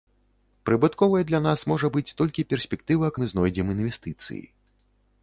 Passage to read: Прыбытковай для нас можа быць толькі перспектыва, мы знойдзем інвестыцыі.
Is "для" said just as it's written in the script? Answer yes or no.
yes